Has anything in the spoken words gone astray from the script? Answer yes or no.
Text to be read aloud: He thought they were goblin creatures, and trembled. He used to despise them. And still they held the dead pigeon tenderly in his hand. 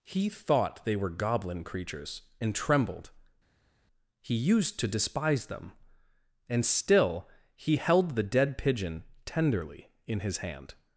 yes